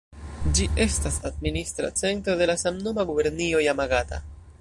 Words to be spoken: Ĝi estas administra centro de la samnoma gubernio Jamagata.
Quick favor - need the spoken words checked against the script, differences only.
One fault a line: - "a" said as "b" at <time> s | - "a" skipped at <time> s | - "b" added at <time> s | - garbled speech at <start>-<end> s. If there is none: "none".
none